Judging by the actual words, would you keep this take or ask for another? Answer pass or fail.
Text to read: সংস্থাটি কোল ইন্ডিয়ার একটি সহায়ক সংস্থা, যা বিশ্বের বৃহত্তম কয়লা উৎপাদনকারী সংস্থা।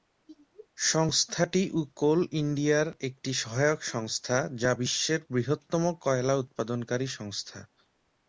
pass